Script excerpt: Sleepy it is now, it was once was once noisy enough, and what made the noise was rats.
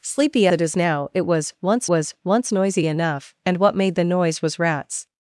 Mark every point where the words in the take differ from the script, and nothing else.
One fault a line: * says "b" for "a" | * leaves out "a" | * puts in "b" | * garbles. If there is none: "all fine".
all fine